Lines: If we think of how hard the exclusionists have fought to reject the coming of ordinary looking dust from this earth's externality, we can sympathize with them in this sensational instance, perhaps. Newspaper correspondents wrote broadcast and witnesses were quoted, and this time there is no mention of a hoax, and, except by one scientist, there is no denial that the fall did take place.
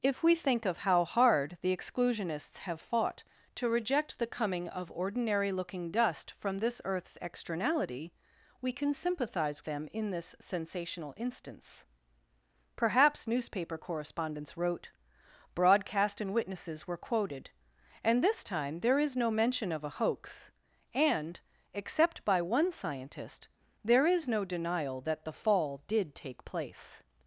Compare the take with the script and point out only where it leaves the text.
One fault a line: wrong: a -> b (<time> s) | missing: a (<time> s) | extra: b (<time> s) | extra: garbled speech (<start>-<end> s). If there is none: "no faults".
missing: with (9.6 s)